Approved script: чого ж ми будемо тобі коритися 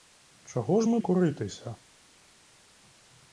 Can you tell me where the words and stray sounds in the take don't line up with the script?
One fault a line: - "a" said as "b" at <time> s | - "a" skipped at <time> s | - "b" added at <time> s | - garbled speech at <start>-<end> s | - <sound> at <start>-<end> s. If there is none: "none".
- "будемо тобі" skipped at 1.0 s